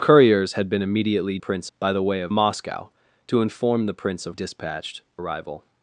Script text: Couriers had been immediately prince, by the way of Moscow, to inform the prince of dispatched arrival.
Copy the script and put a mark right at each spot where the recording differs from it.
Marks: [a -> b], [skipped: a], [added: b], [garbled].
Couriers had been immediately prince, by the way of Moscow, to inform the prince of dispatched arrival.